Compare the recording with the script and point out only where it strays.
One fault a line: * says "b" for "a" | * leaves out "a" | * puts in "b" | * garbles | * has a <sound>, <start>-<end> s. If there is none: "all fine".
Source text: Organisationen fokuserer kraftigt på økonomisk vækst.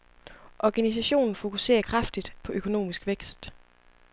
all fine